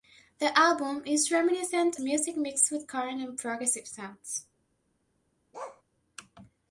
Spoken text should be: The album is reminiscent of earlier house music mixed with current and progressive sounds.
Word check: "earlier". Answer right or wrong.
wrong